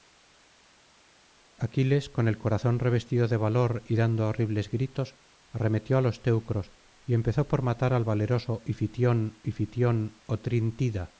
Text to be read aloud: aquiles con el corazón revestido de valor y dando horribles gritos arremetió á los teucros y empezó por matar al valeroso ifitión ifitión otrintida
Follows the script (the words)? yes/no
yes